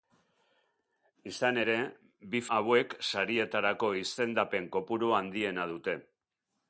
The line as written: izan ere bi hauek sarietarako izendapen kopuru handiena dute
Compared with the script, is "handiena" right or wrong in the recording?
right